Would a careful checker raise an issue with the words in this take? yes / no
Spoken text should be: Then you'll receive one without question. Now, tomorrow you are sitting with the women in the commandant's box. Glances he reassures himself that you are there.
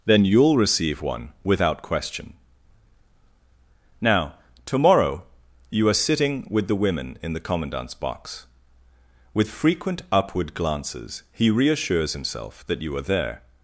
yes